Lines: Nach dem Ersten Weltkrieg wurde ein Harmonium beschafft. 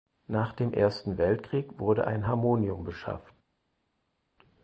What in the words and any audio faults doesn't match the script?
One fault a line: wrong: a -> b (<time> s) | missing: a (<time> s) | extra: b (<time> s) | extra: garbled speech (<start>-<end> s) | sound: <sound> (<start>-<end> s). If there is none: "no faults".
no faults